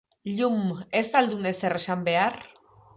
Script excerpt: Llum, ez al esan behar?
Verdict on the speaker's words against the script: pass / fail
fail